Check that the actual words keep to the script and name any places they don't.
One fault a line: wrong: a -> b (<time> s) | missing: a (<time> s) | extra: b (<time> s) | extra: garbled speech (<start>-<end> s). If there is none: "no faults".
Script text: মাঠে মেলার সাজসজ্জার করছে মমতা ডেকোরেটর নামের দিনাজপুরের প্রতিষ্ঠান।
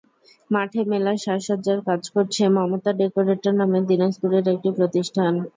extra: কাজ (1.9 s)
extra: একটি (4.5 s)